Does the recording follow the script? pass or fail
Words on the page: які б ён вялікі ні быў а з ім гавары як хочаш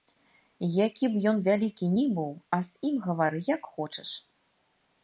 pass